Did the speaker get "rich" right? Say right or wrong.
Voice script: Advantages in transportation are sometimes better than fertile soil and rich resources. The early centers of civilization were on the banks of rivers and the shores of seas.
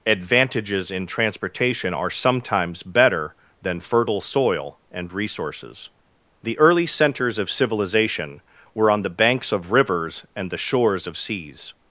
wrong